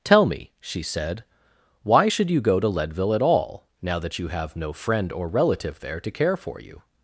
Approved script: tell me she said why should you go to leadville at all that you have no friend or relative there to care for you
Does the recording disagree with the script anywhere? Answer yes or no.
yes